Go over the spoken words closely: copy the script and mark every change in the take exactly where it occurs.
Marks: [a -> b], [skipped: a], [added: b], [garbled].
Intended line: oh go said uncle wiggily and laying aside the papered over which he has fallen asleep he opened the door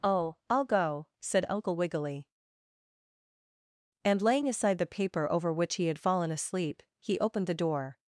oh [added: i'll] go said uncle wiggily and laying aside the [papered -> paper] over which he [has -> had] fallen asleep he opened the door